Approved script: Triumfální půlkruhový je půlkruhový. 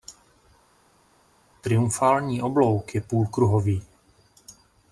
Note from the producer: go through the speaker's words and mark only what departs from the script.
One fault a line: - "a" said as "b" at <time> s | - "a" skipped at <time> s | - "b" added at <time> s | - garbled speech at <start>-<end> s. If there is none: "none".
- "půlkruhový" said as "oblouk" at 2.4 s